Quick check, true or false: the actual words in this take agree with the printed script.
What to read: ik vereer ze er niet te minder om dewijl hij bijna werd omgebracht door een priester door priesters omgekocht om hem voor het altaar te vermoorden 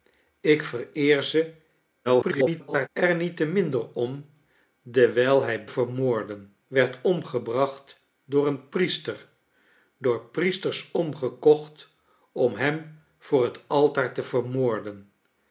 false